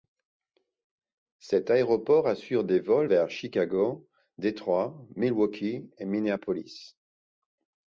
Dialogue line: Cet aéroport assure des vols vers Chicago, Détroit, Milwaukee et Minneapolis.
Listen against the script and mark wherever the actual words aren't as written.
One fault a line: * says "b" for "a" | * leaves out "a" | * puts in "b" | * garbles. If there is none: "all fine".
all fine